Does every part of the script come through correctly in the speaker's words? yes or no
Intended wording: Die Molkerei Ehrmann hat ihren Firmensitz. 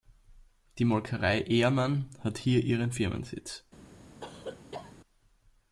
no